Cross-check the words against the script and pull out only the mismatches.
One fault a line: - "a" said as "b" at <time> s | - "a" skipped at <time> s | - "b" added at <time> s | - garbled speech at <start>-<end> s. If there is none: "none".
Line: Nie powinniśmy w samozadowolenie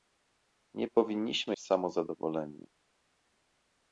none